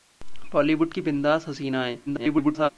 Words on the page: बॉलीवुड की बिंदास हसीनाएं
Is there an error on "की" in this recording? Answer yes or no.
no